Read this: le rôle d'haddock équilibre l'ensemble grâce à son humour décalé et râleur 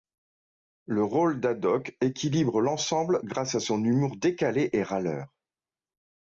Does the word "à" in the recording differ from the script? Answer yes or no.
no